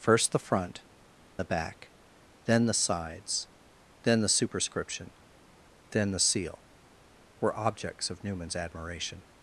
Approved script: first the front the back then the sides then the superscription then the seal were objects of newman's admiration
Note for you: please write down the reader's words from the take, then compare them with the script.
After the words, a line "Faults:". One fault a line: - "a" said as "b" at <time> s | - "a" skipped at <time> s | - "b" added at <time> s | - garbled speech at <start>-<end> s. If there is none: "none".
first the front the back then the sides then the superscription then the seal were objects of newman's admiration
Faults:
none